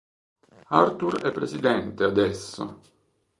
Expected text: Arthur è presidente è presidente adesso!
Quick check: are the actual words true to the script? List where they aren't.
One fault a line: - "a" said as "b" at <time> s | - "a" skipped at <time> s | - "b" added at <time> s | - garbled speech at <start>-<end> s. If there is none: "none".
- "è presidente" skipped at 2.0 s